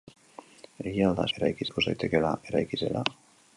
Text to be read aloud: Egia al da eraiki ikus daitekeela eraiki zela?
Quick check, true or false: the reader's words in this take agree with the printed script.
true